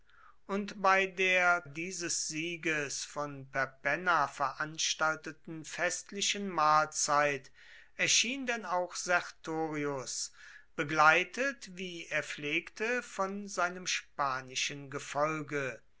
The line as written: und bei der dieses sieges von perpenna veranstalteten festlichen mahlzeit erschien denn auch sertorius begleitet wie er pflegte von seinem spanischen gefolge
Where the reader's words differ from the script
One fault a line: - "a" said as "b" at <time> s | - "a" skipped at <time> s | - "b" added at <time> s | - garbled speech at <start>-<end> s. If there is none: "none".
none